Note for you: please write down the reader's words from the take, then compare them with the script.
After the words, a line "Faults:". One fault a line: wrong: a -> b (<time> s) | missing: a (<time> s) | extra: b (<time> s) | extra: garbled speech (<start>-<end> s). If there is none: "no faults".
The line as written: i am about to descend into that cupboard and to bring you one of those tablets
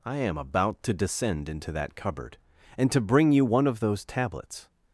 i am about to descend into that cupboard and to bring you one of those tablets
Faults:
no faults